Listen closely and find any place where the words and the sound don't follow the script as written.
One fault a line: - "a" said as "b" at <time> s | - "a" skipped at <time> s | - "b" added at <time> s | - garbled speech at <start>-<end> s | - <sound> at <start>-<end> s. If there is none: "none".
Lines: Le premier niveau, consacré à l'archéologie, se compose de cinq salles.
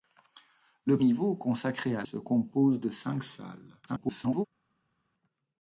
- "premier" skipped at 1.0 s
- "l'archéologie" skipped at 2.0 s
- garbled speech at 3.9-4.5 s